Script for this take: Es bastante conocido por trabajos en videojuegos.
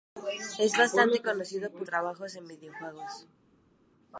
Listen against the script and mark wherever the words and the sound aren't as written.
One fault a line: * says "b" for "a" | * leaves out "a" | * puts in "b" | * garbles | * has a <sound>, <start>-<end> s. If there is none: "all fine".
all fine